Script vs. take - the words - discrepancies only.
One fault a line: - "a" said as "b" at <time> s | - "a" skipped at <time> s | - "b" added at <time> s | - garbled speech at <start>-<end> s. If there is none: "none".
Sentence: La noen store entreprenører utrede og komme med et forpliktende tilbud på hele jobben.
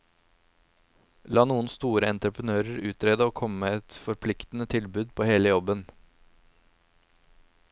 none